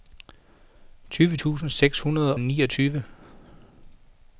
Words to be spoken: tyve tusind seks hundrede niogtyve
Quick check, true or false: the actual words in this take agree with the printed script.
true